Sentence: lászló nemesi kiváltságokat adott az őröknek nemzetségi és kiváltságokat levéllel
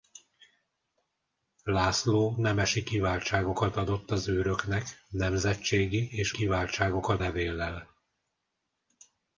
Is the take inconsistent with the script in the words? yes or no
no